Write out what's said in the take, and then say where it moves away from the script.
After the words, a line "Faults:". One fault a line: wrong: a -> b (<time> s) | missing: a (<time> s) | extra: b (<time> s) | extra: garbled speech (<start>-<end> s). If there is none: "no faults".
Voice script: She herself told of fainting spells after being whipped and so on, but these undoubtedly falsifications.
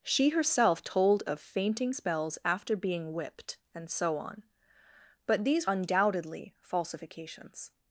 She herself told of fainting spells after being whipped and so on, but these undoubtedly falsifications.
Faults:
no faults